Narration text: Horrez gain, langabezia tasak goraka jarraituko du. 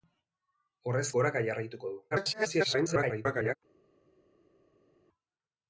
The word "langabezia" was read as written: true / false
false